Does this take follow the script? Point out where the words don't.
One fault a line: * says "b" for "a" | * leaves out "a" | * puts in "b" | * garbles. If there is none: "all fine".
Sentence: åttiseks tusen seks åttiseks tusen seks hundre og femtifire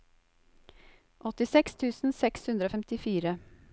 * leaves out "åttiseks tusen seks"